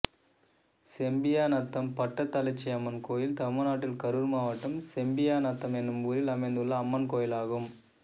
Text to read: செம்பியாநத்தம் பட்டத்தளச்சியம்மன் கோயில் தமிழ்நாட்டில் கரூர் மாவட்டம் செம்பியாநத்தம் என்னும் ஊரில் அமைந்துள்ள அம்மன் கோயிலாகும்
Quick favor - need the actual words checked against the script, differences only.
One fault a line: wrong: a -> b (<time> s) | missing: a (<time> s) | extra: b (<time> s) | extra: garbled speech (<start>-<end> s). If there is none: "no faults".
no faults